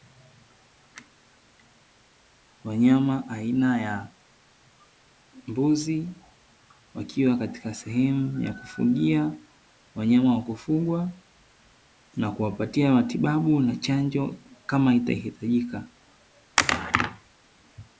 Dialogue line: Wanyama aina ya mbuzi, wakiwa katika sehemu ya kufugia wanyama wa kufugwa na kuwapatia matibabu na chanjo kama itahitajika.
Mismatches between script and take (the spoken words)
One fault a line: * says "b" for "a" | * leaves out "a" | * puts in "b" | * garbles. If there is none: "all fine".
all fine